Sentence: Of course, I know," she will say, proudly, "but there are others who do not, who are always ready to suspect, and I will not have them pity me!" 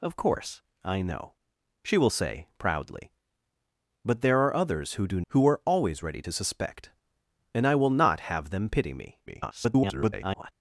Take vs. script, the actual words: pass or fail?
fail